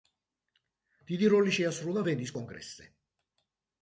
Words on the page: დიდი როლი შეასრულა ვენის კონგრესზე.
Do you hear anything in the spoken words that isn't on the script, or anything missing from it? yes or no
no